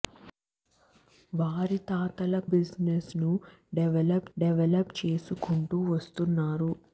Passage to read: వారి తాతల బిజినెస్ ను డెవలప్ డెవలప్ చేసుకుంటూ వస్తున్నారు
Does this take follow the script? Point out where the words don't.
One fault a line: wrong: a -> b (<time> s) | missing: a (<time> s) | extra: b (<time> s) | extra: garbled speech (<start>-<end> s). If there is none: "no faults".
no faults